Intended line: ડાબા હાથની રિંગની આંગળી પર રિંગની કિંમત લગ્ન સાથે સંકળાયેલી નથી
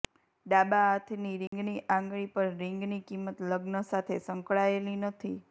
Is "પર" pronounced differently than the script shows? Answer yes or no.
no